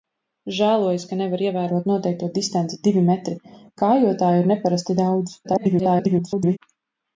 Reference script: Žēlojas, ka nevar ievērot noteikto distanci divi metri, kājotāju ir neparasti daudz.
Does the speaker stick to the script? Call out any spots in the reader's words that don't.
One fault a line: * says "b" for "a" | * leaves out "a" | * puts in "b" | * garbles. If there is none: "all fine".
* garbles